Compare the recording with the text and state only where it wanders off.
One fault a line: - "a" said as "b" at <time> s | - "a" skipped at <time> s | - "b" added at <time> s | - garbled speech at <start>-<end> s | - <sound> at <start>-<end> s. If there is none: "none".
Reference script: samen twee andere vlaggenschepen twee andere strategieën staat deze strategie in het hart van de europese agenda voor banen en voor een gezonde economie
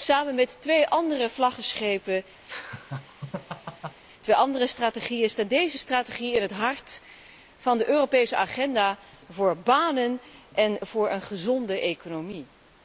- "met" added at 0.3 s
- laugh at 2.5-4.0 s